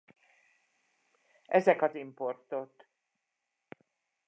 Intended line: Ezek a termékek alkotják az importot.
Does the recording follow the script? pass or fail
fail